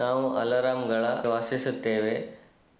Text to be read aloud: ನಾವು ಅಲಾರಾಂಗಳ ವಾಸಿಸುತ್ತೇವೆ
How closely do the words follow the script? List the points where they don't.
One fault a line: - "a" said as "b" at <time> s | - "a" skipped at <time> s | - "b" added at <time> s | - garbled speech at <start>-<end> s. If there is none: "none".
none